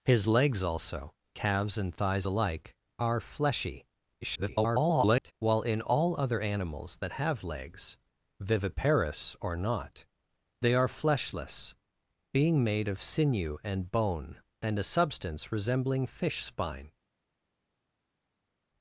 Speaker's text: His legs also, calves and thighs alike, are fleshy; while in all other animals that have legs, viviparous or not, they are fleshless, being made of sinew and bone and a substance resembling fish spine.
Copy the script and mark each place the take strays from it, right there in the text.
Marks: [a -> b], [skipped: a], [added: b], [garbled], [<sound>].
His legs also, calves and thighs alike, are fleshy; [garbled] while in all other animals that have legs, viviparous or not, they are fleshless, being made of sinew and bone and a substance resembling fish spine.